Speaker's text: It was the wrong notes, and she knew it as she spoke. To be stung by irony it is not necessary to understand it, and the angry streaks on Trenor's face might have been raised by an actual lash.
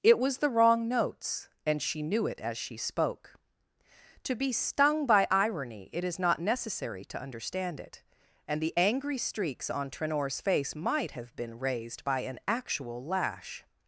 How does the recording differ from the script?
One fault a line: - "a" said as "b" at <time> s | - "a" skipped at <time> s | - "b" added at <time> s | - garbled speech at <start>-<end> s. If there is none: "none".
none